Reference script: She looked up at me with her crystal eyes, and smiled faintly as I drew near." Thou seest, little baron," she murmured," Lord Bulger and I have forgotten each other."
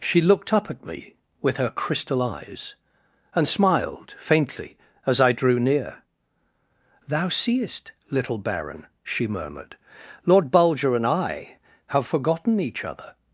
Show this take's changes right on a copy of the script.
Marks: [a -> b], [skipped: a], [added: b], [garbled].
She looked up at me with her crystal eyes, and smiled faintly as I drew near." Thou seest, little baron," she murmured," Lord Bulger and I have forgotten each other."